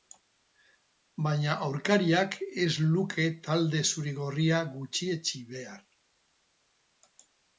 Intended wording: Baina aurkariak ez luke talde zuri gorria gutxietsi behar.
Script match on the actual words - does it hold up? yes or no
yes